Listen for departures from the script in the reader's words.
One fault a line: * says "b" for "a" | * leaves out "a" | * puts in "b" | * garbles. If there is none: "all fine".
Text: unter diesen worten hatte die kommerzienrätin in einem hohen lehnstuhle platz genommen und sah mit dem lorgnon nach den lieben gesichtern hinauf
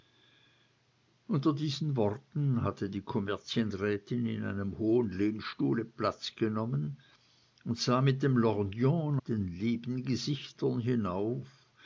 * leaves out "nach"